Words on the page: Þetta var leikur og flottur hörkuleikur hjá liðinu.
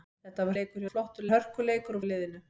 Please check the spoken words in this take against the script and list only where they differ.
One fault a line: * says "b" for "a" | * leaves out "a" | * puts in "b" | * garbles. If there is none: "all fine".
all fine